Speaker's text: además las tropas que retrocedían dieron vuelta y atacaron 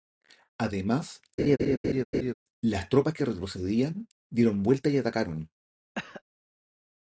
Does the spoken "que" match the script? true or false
true